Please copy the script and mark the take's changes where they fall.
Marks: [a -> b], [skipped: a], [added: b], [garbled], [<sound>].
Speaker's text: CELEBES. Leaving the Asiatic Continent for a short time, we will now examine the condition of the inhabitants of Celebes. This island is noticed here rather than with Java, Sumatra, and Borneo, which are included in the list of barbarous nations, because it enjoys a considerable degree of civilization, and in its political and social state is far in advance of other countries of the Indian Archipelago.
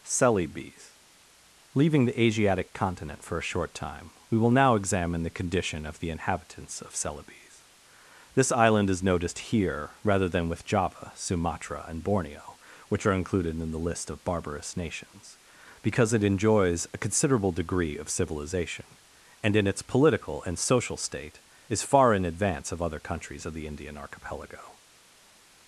CELEBES. Leaving the Asiatic Continent for a short time, we will now examine the condition of the inhabitants of Celebes. This island is noticed here rather than with Java, Sumatra, and Borneo, which are included in the list of barbarous nations, because it enjoys a considerable degree of civilization, and in its political and social state is far in advance of other countries of the Indian Archipelago.